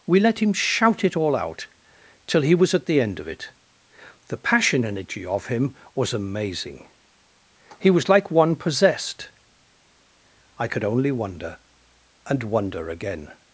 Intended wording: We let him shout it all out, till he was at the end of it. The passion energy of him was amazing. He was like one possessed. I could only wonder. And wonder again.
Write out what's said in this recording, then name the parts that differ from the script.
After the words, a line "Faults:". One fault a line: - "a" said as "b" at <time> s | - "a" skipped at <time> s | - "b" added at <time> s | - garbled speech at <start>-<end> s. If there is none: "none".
We let him shout it all out, till he was at the end of it. The passion energy of him was amazing. He was like one possessed. I could only wonder. And wonder again.
Faults:
none